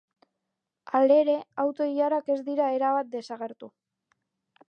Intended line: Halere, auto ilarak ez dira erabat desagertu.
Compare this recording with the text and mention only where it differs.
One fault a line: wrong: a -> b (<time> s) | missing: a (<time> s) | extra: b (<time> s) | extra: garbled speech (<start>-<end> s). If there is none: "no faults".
no faults